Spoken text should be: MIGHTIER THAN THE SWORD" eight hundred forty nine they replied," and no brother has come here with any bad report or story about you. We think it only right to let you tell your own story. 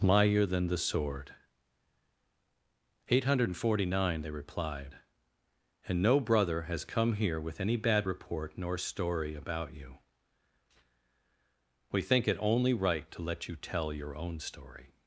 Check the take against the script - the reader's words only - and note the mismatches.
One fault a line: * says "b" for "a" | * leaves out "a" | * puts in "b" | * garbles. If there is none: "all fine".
* says "nor" for "or"